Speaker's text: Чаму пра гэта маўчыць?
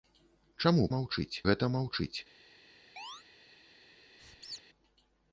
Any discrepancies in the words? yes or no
yes